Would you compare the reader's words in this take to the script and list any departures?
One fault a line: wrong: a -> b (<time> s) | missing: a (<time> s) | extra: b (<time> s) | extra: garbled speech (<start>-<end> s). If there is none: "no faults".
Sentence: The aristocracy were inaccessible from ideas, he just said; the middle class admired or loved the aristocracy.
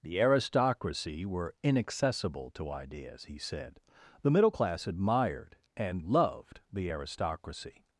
wrong: from -> to (2.5 s)
missing: just (3.4 s)
wrong: or -> and (5.8 s)